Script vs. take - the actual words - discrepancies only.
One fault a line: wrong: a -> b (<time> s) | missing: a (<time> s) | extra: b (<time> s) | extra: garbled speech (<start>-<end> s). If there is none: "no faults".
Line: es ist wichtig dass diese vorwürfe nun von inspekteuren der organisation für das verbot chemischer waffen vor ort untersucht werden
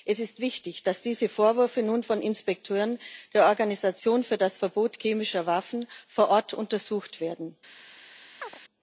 no faults